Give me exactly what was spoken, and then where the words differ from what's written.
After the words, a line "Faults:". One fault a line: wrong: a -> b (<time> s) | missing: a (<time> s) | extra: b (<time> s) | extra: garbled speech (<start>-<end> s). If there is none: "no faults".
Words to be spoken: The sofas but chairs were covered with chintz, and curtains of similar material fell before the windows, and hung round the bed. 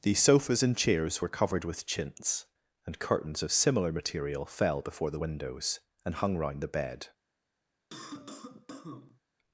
The sofas and chairs were covered with chintz, and curtains of similar material fell before the windows, and hung round the bed.
Faults:
wrong: but -> and (0.6 s)